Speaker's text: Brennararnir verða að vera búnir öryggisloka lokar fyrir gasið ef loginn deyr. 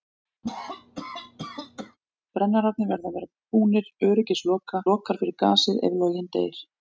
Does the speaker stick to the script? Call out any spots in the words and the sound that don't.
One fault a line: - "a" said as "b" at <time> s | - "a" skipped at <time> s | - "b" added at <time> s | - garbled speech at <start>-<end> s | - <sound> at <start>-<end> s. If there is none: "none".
- cough at 0.4-2.0 s